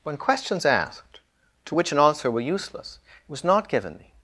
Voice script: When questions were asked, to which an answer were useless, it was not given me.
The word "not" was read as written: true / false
true